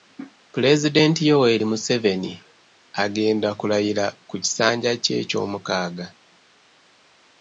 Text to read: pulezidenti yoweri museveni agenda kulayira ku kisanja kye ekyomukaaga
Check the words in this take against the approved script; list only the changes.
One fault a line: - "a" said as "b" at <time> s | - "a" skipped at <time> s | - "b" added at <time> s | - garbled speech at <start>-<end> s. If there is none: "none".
none